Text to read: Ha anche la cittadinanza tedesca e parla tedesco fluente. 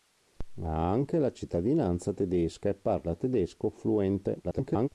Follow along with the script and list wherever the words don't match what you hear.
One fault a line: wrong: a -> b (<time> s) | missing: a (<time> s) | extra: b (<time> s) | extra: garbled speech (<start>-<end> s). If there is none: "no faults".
extra: garbled speech (4.4-4.9 s)